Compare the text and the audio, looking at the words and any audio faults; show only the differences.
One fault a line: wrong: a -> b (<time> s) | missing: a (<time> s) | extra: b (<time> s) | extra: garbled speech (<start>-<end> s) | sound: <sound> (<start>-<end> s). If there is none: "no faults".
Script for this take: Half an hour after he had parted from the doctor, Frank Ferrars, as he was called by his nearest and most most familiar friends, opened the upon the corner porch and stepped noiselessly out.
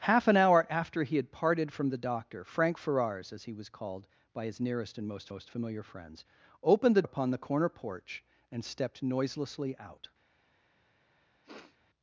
sound: sniff (11.4-11.8 s)